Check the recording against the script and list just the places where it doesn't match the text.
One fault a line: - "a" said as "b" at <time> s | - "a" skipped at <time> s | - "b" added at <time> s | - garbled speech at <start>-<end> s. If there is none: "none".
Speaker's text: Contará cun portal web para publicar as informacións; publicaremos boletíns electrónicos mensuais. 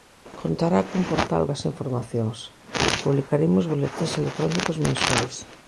- "web para publicar" skipped at 1.4 s